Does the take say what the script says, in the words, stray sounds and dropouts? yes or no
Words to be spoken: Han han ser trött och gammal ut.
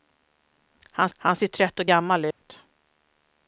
no